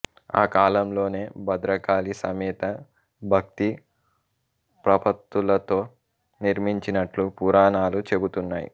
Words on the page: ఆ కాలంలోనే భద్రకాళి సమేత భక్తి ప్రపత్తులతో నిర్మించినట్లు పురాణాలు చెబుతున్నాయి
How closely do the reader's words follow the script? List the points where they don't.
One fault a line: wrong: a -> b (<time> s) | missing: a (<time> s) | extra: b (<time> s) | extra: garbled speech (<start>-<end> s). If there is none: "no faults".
no faults